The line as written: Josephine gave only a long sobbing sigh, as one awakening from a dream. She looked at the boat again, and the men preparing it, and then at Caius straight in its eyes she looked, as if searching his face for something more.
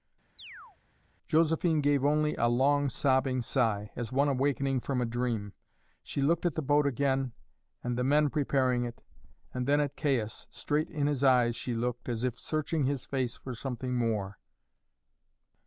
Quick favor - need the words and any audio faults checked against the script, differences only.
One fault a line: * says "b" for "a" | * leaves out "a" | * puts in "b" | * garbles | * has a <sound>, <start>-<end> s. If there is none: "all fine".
* has a chirp, 0.4-0.8 s
* says "his" for "its"